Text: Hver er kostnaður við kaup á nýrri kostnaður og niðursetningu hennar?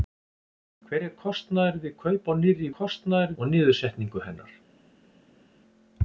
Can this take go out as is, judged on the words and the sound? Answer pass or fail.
pass